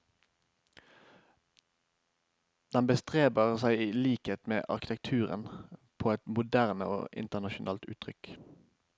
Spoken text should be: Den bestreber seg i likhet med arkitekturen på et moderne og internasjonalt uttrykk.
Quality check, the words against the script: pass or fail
pass